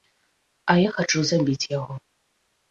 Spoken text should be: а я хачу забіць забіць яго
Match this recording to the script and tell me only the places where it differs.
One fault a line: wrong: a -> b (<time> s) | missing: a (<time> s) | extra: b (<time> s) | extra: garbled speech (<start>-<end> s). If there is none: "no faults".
missing: забіць (1.7 s)